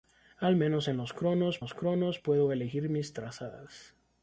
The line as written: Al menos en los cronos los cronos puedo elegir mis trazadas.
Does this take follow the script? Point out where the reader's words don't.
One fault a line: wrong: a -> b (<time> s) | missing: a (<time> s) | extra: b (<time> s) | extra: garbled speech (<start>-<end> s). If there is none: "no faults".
no faults